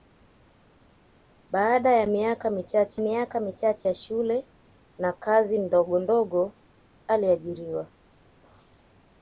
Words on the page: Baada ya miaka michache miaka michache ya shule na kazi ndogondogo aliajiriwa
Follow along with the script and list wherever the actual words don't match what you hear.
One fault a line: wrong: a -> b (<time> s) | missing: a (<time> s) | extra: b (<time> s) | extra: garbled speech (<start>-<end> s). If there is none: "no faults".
no faults